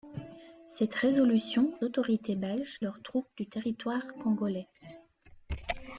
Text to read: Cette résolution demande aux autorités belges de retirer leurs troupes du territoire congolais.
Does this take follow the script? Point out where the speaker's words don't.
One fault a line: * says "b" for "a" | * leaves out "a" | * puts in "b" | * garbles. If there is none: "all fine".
* leaves out "demande aux"
* leaves out "de retirer"